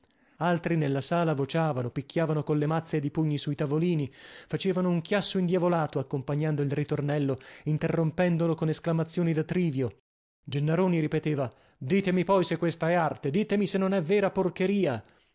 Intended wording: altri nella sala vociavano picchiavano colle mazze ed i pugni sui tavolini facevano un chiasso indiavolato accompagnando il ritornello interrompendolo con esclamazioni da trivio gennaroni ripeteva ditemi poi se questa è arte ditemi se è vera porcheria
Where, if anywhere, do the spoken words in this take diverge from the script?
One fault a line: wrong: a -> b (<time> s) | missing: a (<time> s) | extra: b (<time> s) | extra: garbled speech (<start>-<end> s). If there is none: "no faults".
extra: non (13.8 s)